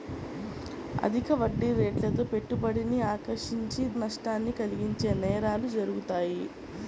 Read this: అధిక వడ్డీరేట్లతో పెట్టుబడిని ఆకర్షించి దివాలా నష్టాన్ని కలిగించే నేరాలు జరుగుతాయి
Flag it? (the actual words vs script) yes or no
yes